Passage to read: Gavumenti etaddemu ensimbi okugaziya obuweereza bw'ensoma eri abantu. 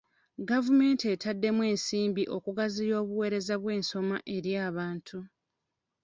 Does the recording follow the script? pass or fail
pass